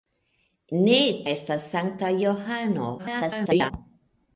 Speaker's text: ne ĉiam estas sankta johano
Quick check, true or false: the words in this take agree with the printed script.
false